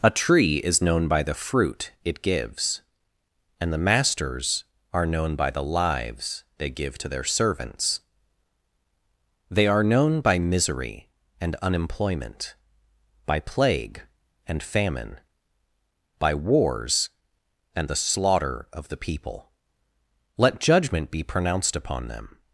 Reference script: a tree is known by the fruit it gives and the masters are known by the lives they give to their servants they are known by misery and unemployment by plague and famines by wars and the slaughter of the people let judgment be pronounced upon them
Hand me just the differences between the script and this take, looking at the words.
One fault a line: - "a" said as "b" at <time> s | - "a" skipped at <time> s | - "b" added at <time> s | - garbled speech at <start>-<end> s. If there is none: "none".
- "famines" said as "famine" at 14.6 s